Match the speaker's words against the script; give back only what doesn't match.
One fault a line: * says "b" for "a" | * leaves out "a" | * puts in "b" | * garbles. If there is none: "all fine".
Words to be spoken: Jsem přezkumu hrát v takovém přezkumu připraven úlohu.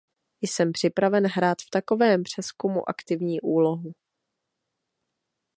* says "připraven" for "přezkumu"
* says "aktivní" for "připraven"